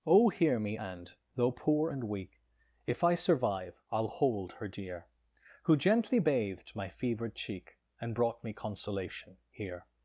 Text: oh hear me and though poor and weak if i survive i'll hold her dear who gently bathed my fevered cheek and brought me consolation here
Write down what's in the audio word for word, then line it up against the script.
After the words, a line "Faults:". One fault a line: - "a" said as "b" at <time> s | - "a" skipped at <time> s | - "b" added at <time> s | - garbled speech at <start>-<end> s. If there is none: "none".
oh hear me and though poor and weak if i survive i'll hold her dear who gently bathed my fevered cheek and brought me consolation here
Faults:
none